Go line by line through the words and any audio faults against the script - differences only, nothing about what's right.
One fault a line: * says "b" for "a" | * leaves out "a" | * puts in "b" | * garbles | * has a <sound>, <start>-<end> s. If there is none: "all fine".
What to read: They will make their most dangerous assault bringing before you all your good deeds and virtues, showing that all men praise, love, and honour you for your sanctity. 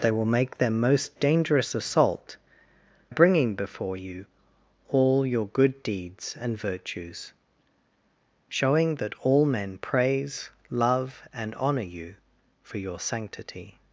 all fine